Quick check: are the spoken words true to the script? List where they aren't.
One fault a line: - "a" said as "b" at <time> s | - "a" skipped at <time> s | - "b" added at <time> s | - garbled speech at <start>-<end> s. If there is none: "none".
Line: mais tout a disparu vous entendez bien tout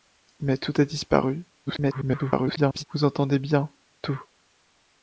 - garbled speech at 1.7-2.8 s